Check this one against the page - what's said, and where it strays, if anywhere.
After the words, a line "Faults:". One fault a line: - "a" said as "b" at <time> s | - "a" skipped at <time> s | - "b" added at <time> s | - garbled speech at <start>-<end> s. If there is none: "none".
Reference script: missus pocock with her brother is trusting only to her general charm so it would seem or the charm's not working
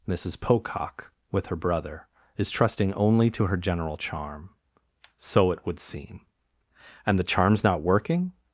missus pocock with her brother is trusting only to her general charm so it would seem and the charm's not working
Faults:
- "or" said as "and" at 7.1 s